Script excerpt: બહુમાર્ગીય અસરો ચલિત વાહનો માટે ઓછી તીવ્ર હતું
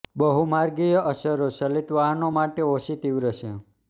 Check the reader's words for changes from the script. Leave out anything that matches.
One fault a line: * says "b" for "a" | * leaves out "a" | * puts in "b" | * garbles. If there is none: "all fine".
* says "છે" for "હતું"